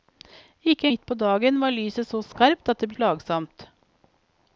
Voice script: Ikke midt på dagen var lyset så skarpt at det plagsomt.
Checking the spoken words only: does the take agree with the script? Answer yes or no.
yes